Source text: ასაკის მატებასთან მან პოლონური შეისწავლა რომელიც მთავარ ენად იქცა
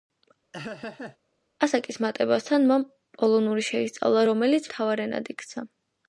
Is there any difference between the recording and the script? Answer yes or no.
no